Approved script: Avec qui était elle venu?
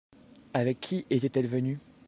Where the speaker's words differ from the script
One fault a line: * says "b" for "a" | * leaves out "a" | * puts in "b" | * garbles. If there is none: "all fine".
all fine